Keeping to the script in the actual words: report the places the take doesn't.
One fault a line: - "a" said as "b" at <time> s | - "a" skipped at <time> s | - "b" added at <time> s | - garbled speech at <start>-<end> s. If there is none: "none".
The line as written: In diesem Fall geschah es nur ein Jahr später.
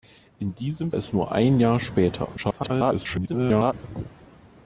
- "Fall geschah" skipped at 0.9 s
- garbled speech at 2.4-3.7 s